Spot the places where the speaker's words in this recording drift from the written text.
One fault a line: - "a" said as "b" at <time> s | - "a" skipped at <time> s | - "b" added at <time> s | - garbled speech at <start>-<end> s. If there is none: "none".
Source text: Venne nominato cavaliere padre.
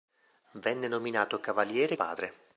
none